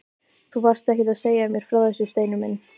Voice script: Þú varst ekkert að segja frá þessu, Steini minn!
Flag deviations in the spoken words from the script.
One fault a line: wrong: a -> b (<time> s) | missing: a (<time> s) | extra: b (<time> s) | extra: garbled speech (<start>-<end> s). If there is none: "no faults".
extra: mér (1.5 s)